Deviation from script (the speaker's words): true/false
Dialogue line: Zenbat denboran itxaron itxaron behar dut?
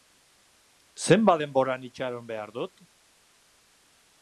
true